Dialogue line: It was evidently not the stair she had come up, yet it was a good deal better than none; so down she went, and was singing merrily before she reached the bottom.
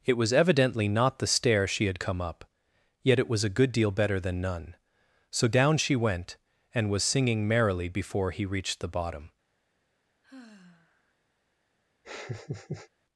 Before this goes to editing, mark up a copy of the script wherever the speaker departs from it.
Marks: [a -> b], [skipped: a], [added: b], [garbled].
It was evidently not the stair she had come up, yet it was a good deal better than none; so down she went, and was singing merrily before [she -> he] reached the bottom.